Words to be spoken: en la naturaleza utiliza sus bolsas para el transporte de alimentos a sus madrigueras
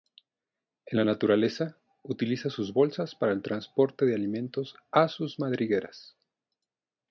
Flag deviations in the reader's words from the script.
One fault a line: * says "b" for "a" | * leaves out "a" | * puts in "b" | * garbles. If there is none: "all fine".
all fine